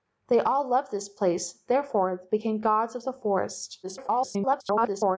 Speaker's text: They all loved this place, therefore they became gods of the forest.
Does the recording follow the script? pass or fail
fail